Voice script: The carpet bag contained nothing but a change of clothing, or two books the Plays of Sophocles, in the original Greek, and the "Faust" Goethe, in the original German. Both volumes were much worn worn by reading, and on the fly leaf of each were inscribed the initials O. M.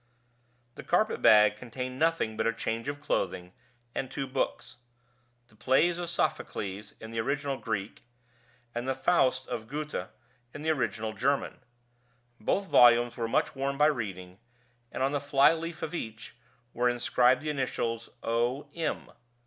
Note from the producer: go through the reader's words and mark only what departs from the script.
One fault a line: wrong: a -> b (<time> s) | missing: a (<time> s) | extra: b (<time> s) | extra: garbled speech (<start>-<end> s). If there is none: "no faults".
wrong: or -> and (3.9 s)
extra: of (9.5 s)
missing: worn (13.8 s)